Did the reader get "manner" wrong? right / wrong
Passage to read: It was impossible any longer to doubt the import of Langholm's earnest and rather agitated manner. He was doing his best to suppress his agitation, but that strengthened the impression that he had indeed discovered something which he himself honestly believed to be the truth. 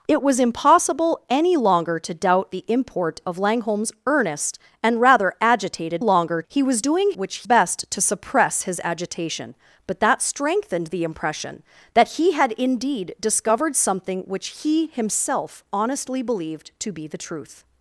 wrong